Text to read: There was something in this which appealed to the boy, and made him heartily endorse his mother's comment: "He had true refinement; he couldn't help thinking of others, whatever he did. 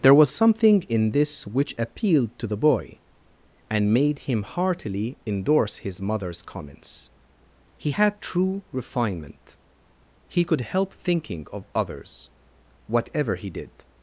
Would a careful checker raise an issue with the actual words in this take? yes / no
yes